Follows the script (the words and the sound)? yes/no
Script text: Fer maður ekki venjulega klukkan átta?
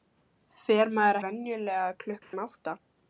no